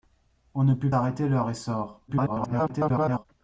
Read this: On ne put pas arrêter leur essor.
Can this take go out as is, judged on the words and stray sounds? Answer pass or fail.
fail